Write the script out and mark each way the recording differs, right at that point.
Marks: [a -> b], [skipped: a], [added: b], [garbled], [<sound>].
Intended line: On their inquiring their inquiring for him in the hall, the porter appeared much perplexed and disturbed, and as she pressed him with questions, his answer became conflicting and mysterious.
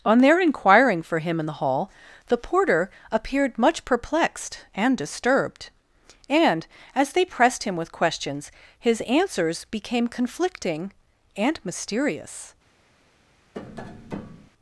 On their inquiring [skipped: their inquiring] for him in the hall, the porter appeared much perplexed and disturbed, and as [she -> they] pressed him with questions, his [answer -> answers] became conflicting and mysterious. [tap]